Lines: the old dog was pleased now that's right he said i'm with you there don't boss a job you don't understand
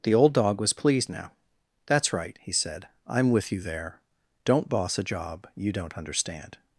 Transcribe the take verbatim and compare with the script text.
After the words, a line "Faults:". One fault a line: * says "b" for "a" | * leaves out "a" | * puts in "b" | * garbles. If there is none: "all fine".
the old dog was pleased now that's right he said i'm with you there don't boss a job you don't understand
Faults:
all fine